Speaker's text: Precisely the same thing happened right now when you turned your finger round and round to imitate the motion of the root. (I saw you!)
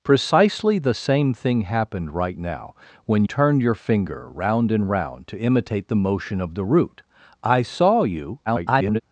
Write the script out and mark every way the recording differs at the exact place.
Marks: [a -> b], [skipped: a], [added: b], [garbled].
Precisely the same thing happened right now when [skipped: you] turned your finger round and round to imitate the motion of the root. (I saw you!) [garbled]